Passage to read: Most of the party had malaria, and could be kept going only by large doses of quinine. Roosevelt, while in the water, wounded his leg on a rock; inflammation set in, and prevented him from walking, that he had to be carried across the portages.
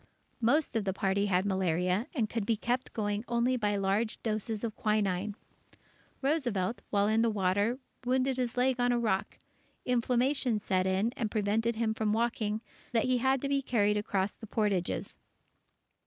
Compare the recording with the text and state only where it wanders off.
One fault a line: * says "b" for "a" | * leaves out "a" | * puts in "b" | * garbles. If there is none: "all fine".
all fine